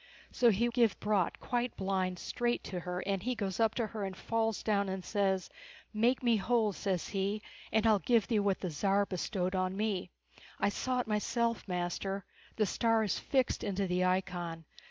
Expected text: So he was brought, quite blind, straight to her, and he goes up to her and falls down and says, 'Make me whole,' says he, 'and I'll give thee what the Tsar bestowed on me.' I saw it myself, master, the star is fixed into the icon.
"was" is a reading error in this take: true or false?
true